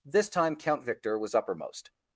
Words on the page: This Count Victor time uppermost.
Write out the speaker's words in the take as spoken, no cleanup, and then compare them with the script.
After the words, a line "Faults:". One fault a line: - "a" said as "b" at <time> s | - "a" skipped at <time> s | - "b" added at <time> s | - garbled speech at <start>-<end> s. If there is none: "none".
This time Count Victor was uppermost.
Faults:
- "time" added at 0.3 s
- "time" said as "was" at 1.2 s